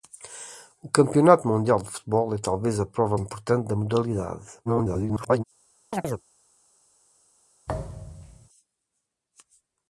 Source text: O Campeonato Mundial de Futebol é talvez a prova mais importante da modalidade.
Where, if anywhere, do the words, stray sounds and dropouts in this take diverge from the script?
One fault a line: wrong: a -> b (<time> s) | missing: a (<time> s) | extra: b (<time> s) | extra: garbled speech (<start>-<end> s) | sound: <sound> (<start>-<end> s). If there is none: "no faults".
missing: mais (3.2 s)
extra: garbled speech (4.6-5.4 s)
sound: chirp (5.9-6.2 s)
sound: thud (7.7-8.5 s)